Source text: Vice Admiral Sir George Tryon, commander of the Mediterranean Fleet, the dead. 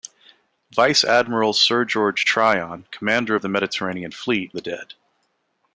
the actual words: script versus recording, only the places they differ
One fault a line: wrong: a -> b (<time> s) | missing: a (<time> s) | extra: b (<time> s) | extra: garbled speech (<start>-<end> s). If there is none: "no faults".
no faults